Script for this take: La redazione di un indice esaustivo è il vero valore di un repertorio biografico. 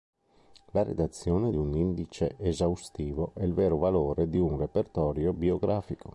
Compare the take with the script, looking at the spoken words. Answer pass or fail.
pass